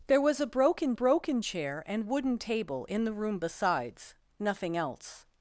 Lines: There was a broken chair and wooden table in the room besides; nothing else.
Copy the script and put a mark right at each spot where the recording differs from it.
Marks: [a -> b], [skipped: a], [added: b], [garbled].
There was a broken [added: broken] chair and wooden table in the room besides; nothing else.